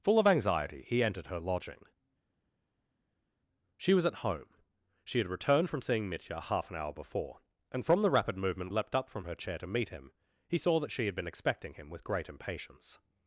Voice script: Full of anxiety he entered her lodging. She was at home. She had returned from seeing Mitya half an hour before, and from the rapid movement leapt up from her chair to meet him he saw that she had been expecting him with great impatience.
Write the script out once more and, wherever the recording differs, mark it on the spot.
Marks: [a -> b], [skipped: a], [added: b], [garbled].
Full of anxiety he entered her lodging. She was at home. She had returned from seeing Mitya half an hour before, and from the rapid movement leapt up from her chair to meet him he saw that she had been expecting him with great impatience.